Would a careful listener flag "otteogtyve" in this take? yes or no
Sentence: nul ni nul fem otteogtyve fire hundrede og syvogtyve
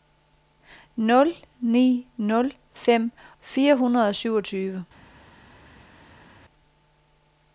yes